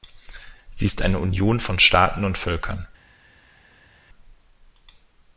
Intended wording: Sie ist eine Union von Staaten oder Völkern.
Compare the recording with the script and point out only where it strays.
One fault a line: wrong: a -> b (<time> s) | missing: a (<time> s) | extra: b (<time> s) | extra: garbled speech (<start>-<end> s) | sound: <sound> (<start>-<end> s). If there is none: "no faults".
wrong: oder -> und (2.2 s)